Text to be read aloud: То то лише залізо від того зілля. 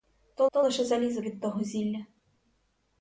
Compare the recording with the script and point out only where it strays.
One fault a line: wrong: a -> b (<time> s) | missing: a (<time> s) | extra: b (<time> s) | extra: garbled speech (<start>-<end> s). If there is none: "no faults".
no faults